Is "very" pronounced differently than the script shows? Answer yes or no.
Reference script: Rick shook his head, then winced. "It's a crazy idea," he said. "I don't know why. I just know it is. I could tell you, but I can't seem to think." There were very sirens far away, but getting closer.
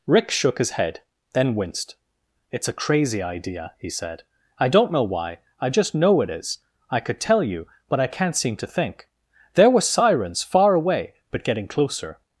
yes